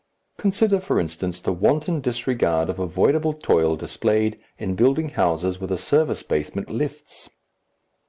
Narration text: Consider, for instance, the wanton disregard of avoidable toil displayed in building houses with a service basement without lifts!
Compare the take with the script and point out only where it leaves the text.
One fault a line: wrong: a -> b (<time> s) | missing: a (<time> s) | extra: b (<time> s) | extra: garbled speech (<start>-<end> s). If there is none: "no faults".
missing: without (6.7 s)